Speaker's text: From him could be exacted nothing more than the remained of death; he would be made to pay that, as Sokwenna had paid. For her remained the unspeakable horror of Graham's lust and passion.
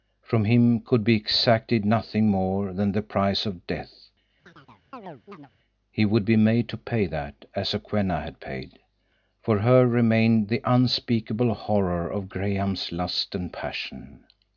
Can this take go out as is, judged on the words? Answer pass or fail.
fail